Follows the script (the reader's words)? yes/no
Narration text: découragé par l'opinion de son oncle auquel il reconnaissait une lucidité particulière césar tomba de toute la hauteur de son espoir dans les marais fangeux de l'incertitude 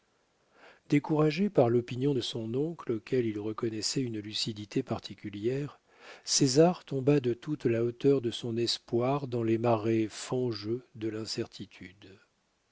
yes